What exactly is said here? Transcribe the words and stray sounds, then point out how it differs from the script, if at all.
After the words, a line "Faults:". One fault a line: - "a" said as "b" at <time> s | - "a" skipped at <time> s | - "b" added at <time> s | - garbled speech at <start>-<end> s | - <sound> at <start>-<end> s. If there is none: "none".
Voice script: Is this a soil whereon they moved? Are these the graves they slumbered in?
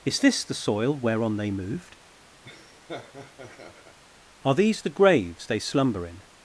Is this the soil whereon they moved? Are these the graves they slumber in?
Faults:
- "a" said as "the" at 0.4 s
- laugh at 2.4-4.0 s
- "slumbered" said as "slumber" at 5.6 s